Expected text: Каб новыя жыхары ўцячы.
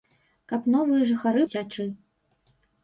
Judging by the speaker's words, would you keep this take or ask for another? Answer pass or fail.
pass